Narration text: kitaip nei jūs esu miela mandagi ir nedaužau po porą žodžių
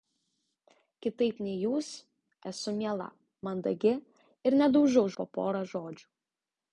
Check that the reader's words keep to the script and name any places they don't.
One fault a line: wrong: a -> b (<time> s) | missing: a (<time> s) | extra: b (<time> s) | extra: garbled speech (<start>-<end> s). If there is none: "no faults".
no faults